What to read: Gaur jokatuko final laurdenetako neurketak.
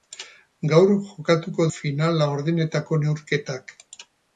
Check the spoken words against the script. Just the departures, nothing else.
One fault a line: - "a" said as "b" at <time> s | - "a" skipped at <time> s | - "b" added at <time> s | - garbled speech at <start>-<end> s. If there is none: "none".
none